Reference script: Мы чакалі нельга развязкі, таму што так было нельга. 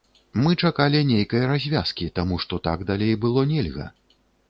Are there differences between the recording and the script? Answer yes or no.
yes